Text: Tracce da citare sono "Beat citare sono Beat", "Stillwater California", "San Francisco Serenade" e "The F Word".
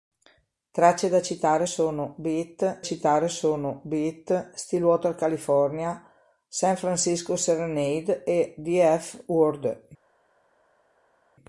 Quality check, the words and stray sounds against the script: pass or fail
pass